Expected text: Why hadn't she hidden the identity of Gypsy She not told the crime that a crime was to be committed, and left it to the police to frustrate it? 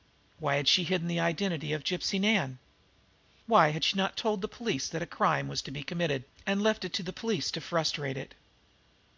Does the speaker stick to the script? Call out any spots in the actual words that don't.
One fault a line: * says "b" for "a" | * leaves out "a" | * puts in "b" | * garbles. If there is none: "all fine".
* says "had" for "hadn't"
* puts in "Nan Why had"
* says "police" for "crime"